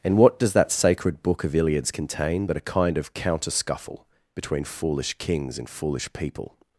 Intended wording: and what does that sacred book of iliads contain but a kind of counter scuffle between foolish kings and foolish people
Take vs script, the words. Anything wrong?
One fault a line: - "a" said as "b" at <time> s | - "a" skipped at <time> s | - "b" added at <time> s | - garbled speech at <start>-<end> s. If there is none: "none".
none